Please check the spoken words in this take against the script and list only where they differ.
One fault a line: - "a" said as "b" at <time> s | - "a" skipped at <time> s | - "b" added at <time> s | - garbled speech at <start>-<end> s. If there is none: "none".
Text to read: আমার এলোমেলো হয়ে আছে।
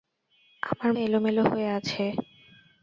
none